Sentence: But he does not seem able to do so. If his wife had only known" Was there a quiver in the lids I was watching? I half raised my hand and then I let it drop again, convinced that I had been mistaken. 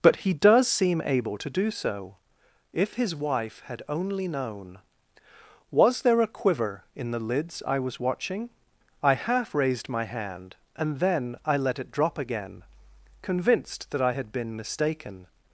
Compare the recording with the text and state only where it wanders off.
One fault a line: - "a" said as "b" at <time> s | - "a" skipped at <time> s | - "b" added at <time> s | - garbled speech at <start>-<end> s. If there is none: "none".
- "not" skipped at 0.7 s